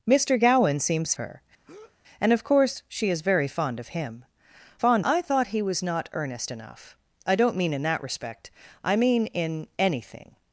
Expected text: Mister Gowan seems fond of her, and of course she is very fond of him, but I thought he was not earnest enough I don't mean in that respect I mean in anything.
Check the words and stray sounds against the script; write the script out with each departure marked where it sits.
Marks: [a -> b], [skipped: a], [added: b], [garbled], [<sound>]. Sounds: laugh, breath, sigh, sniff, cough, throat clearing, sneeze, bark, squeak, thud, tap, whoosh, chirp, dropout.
Mister Gowan seems [skipped: fond of] her, [breath] and of course she is very fond of him, [but -> fond] I thought he was not earnest enough I don't mean in that respect I mean in anything.